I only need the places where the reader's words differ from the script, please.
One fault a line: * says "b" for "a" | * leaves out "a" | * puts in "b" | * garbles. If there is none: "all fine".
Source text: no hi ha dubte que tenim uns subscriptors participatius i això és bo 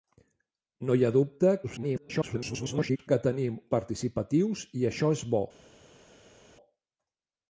* garbles
* leaves out "uns subscriptors"